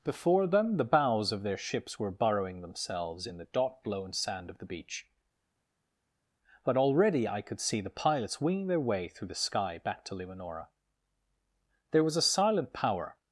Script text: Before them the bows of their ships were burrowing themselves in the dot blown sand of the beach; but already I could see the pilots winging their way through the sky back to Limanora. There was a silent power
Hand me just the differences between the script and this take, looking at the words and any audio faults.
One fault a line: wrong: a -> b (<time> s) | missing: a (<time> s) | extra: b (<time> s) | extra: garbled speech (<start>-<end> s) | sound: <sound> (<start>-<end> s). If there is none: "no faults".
no faults